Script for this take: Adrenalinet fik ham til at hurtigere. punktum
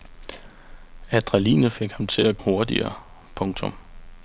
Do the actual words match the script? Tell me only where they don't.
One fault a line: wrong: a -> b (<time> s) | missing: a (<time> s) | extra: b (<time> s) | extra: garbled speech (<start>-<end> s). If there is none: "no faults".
no faults